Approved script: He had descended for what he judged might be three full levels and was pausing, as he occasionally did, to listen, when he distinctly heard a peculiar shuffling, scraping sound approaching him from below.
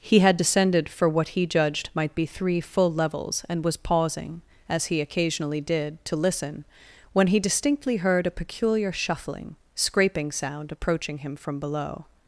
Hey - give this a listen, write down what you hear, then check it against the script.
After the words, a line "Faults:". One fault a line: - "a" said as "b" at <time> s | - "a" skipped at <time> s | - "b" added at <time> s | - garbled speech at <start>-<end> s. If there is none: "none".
He had descended for what he judged might be three full levels and was pausing, as he occasionally did, to listen, when he distinctly heard a peculiar shuffling, scraping sound approaching him from below.
Faults:
none